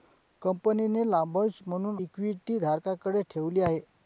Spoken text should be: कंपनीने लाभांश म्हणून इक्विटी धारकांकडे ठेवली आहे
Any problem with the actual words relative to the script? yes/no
no